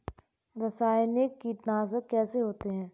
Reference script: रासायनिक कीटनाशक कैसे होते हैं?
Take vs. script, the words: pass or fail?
pass